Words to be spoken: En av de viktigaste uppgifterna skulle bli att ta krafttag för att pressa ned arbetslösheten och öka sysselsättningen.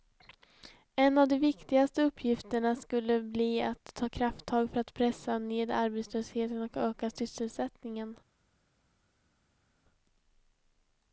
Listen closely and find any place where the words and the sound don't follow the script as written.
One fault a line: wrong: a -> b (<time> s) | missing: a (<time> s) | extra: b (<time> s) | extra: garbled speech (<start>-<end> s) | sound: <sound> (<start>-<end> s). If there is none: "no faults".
no faults